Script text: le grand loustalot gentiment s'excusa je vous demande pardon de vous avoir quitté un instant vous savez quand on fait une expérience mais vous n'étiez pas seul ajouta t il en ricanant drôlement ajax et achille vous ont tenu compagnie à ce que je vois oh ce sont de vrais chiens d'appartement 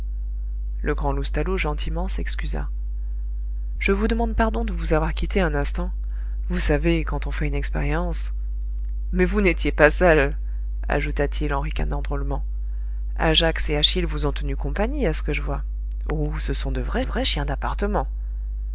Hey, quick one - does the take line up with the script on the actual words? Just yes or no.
no